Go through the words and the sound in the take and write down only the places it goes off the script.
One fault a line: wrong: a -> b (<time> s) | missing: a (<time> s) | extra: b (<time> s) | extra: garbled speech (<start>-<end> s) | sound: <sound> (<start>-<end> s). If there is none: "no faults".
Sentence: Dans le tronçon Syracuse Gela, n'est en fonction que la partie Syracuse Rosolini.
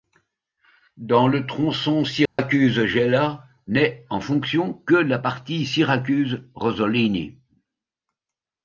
sound: dropout (2.3-2.4 s)